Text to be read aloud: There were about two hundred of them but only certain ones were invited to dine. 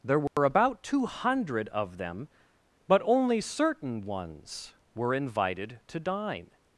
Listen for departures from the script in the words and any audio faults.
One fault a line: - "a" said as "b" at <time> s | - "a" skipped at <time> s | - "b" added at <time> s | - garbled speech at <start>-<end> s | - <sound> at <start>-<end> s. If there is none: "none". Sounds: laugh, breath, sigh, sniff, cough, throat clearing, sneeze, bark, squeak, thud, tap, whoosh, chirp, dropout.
- dropout at 0.3-0.4 s